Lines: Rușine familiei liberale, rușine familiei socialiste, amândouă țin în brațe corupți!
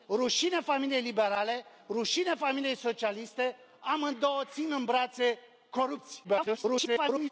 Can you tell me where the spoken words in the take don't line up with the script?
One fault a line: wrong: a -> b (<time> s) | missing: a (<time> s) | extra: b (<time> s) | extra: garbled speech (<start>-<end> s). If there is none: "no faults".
extra: garbled speech (6.2-7.3 s)